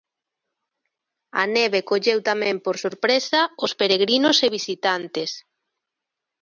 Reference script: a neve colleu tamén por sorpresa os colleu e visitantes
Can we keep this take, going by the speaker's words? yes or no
no